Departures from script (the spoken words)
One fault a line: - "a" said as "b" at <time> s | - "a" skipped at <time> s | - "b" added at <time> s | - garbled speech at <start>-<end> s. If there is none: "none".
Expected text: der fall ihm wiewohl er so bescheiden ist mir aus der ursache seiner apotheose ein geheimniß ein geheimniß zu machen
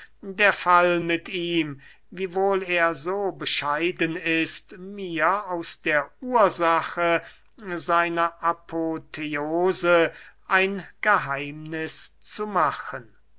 - "mit" added at 1.0 s
- "ein geheimniß" skipped at 12.2 s